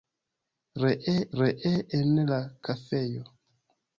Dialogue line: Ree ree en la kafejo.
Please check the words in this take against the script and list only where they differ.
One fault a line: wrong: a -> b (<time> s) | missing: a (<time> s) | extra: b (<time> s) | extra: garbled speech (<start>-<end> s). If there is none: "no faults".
no faults